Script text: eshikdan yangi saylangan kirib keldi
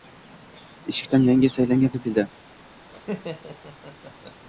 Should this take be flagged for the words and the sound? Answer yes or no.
yes